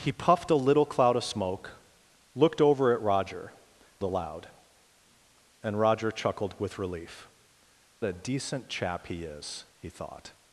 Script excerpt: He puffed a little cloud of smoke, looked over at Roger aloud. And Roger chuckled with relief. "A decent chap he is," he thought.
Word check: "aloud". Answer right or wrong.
right